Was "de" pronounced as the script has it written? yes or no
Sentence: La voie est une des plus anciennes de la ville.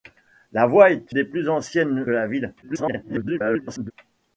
no